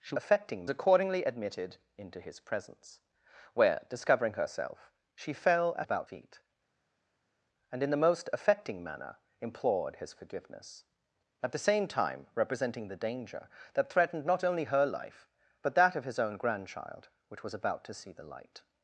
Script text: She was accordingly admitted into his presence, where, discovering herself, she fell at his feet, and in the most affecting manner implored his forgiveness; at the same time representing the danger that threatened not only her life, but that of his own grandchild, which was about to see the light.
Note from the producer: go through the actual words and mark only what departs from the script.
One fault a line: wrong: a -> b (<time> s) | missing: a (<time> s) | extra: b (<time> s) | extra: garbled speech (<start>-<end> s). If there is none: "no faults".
wrong: was -> affecting (0.1 s)
wrong: his -> about (5.8 s)